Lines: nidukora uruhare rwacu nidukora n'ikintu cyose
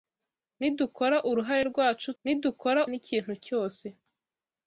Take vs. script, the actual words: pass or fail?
pass